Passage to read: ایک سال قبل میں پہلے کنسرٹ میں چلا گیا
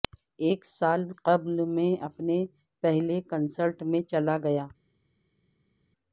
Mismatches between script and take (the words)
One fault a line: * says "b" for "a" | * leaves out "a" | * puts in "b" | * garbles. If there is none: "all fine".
* puts in "اپنے"